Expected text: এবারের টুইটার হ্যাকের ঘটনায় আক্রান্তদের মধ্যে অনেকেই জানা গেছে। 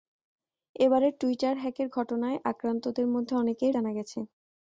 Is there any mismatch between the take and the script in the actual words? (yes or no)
no